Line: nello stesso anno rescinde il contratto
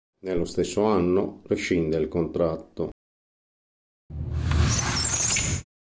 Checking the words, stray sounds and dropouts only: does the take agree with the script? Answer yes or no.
no